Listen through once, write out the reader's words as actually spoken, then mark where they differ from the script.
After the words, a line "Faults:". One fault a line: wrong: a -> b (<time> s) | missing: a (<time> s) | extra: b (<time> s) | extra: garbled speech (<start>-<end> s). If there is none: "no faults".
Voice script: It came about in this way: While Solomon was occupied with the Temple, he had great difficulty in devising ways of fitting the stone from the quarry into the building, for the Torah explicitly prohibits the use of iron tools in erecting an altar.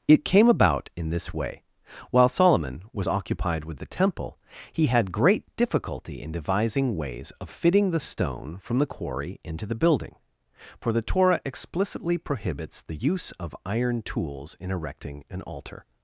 It came about in this way: While Solomon was occupied with the Temple, he had great difficulty in devising ways of fitting the stone from the quarry into the building, for the Torah explicitly prohibits the use of iron tools in erecting an altar.
Faults:
no faults